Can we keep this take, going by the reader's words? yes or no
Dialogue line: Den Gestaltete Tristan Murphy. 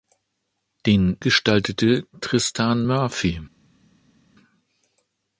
yes